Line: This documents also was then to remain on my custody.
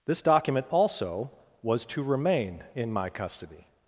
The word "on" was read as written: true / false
false